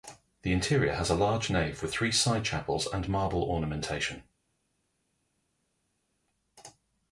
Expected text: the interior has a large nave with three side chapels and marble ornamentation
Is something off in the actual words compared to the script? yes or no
no